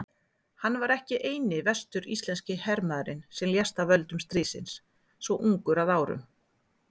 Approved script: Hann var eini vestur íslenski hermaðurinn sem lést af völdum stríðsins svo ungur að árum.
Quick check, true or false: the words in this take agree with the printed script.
false